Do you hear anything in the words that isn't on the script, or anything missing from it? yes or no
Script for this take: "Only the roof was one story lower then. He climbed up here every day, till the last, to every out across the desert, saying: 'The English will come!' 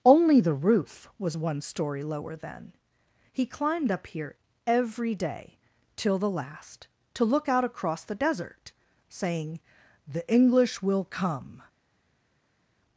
yes